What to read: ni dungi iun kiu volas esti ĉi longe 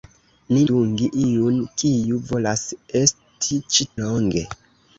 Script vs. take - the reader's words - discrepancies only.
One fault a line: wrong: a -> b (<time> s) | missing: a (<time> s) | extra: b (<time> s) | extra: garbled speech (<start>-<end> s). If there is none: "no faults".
no faults